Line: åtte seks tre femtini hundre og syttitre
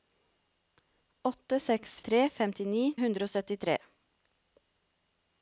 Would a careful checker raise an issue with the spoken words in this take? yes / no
no